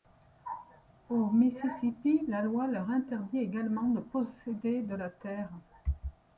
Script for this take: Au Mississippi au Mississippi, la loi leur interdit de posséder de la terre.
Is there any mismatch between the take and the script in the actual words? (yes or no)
yes